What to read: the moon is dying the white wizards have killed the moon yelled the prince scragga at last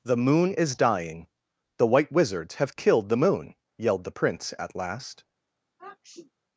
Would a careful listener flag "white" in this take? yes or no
no